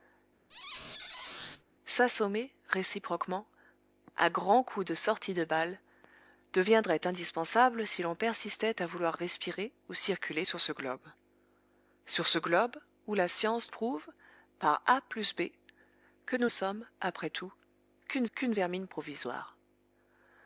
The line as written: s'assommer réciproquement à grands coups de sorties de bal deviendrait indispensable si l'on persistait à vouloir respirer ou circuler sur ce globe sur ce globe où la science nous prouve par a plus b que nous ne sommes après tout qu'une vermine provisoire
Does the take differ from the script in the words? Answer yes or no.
yes